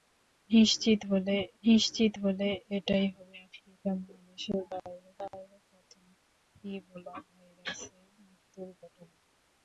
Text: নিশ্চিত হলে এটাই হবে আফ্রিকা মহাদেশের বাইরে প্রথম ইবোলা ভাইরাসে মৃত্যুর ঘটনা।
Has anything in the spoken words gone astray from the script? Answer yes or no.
yes